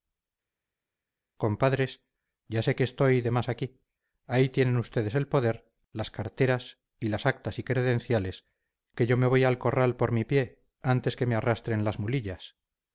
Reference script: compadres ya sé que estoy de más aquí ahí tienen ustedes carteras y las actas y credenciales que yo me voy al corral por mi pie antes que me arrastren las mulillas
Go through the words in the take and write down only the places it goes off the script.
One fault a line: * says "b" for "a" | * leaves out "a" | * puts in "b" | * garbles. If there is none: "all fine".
* puts in "el poder las"